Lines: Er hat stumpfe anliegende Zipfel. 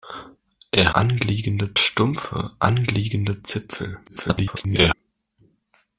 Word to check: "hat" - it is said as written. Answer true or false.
false